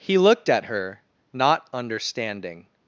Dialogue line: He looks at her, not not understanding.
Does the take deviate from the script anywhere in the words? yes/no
yes